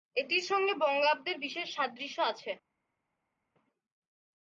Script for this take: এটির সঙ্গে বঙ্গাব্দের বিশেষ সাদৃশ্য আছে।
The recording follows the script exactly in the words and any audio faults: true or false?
true